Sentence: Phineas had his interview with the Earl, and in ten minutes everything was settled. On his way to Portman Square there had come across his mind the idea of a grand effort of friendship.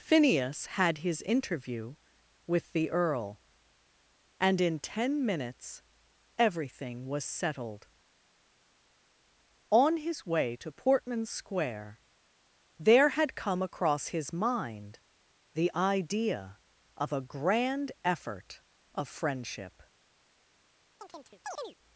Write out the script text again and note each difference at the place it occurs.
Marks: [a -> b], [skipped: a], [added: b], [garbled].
Phineas had his interview with the Earl, and in ten minutes everything was settled. On his way to Portman Square there had come across his mind the idea of a grand effort of friendship.